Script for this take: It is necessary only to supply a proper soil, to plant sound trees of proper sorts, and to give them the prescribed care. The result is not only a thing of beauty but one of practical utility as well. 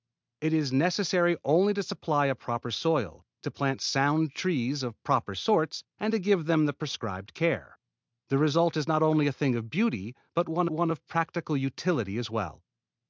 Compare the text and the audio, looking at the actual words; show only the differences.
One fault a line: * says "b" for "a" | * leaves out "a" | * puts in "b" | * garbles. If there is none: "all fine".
* puts in "one"